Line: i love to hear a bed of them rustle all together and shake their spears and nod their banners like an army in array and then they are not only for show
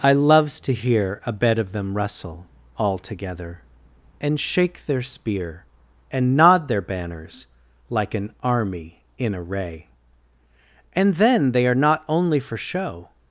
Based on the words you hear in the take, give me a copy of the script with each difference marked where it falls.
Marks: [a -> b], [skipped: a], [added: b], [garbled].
i [love -> loves] to hear a bed of them rustle all together and shake their [spears -> spear] and nod their banners like an army in array and then they are not only for show